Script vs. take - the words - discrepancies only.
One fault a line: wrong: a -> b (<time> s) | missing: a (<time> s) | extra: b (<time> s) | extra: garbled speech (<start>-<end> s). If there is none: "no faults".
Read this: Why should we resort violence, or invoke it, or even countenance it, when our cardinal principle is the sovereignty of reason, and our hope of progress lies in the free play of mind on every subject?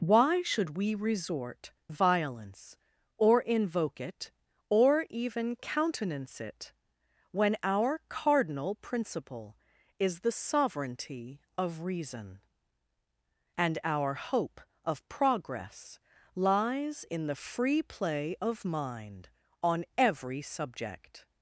no faults